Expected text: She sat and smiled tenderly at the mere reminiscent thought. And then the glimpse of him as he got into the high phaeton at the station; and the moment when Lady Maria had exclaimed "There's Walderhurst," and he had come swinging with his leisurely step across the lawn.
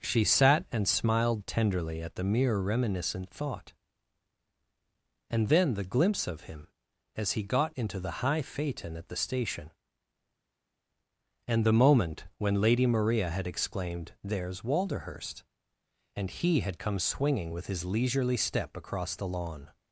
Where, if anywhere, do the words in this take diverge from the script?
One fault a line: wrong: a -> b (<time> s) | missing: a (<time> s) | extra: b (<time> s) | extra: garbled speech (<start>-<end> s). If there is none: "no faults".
no faults